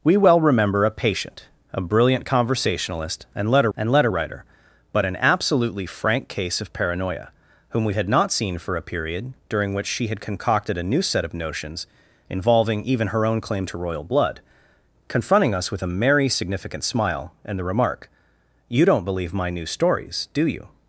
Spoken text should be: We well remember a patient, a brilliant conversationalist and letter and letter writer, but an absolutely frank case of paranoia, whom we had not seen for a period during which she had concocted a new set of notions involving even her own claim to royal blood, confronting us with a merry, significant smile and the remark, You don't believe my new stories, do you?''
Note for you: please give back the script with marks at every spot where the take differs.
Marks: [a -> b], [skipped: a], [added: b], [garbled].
We well remember a patient, a brilliant conversationalist and letter and letter writer, but an absolutely frank case of paranoia, whom we had not seen for a period during which she had concocted a new set of notions involving even her own claim to royal blood, confronting us with a merry, significant smile and the remark, You don't believe my new stories, do you?''